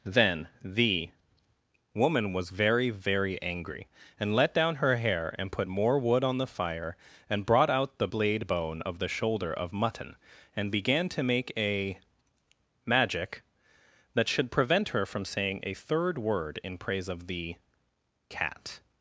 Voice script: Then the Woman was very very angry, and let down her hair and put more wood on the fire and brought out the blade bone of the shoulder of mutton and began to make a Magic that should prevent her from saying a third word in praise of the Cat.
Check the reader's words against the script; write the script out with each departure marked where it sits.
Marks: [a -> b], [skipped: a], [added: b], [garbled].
Then the Woman was very very angry, and let down her hair and put more wood on the fire and brought out the blade bone of the shoulder of mutton and began to make a Magic that should prevent her from saying a third word in praise of the Cat.